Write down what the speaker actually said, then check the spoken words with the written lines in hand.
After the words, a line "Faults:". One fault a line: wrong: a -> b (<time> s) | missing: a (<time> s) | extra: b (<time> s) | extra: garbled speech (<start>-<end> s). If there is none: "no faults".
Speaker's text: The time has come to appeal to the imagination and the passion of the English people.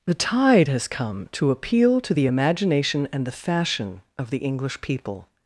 The tide has come to appeal to the imagination and the fashion of the English people.
Faults:
wrong: time -> tide (0.1 s)
wrong: passion -> fashion (3.3 s)